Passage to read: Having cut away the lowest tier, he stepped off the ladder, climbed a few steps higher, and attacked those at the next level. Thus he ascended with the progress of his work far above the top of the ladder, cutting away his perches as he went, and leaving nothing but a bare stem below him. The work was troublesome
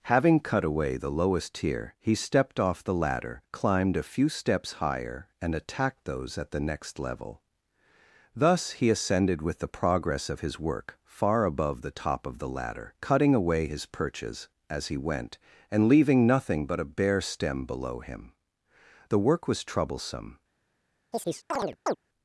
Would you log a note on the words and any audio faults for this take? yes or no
yes